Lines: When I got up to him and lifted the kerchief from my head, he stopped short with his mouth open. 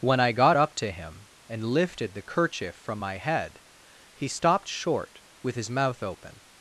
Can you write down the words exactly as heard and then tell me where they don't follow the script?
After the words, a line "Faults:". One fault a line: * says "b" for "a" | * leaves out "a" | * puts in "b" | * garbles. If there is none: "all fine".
When I got up to him and lifted the kerchief from my head, he stopped short with his mouth open.
Faults:
all fine